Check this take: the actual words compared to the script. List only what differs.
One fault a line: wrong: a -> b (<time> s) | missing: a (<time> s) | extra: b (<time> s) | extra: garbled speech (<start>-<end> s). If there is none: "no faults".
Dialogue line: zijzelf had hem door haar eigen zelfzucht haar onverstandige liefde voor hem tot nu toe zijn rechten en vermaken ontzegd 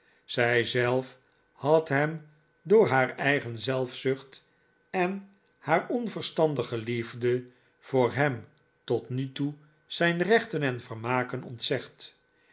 extra: en (4.9 s)